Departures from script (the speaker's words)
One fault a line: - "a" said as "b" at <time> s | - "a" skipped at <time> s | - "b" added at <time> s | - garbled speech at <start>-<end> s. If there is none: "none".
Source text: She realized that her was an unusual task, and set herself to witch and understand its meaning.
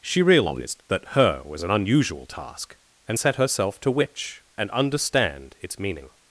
none